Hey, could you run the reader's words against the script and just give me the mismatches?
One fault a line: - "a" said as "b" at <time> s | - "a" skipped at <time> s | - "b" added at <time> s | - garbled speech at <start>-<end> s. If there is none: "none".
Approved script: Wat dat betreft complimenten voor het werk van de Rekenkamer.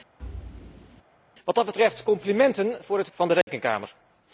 - "werk" skipped at 3.1 s